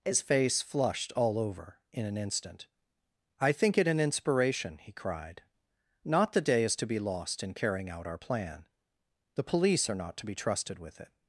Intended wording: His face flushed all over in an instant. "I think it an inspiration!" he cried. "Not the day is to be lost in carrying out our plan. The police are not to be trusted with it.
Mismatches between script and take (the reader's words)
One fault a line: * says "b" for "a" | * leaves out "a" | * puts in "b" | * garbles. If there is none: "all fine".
all fine